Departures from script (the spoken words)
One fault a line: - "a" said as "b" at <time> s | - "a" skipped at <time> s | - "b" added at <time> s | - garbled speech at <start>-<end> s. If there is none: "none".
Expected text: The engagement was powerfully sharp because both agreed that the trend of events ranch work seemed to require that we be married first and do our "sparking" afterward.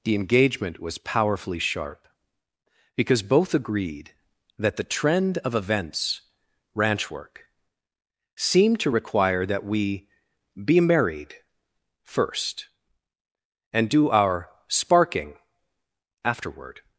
none